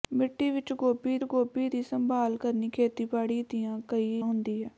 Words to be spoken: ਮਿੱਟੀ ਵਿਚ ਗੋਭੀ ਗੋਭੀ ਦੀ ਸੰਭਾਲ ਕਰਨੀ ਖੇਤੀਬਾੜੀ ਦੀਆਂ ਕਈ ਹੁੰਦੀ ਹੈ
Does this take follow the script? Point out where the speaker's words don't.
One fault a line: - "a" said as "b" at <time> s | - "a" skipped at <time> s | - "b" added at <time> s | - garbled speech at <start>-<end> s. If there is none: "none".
none